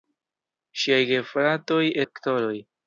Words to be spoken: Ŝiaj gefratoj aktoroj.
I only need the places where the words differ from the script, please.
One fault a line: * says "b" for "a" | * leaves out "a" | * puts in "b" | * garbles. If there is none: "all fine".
all fine